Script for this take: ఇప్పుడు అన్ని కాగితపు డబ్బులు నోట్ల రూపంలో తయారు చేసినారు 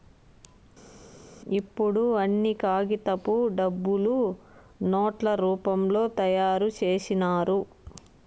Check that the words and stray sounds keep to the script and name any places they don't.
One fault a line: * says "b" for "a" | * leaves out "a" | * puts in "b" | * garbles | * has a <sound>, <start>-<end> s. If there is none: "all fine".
all fine